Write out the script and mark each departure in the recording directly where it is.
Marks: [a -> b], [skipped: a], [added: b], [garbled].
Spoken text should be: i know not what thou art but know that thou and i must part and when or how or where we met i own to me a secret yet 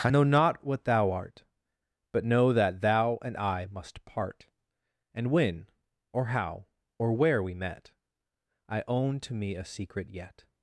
i know not what thou art but know that thou and i must part and when or how or where we met i own to me a secret yet